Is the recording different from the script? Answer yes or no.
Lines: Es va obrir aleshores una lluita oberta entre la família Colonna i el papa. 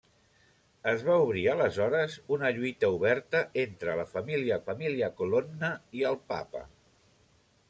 yes